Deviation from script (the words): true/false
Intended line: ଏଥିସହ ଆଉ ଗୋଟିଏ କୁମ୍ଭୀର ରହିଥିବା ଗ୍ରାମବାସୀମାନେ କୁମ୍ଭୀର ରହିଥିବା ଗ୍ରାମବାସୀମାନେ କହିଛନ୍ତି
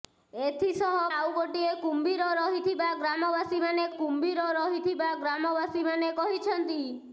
false